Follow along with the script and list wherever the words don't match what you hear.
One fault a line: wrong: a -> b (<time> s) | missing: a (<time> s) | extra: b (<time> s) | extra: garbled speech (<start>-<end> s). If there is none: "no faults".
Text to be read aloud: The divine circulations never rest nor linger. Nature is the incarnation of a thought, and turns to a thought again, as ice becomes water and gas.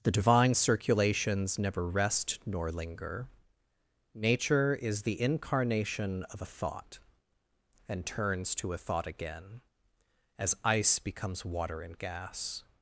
no faults